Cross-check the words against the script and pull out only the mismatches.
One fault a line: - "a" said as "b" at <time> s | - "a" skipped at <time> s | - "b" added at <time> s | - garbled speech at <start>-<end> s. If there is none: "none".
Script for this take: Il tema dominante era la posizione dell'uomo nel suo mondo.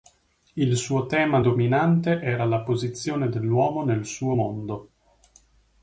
- "suo" added at 0.8 s